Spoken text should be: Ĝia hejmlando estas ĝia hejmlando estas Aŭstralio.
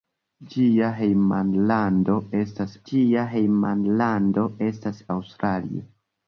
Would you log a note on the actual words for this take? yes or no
no